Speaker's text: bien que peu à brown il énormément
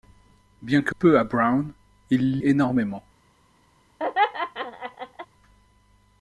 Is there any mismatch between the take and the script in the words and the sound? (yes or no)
yes